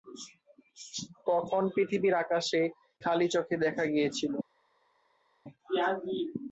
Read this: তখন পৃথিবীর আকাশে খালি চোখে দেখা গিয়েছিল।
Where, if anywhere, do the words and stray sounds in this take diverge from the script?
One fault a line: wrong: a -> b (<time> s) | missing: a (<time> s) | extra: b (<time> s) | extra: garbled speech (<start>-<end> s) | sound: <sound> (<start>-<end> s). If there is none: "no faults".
no faults